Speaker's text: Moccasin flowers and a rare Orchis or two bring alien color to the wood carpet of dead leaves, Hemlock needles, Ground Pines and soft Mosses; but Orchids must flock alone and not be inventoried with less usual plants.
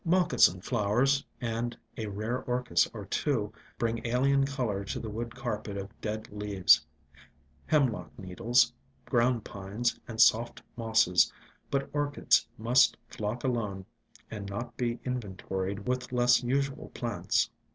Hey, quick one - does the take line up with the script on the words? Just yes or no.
yes